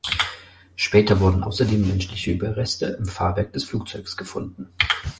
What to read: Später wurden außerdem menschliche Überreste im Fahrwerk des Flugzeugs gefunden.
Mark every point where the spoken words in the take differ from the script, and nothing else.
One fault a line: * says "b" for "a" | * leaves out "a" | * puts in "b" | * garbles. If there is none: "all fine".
all fine